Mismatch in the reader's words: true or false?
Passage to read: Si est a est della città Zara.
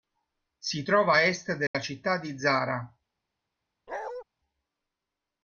true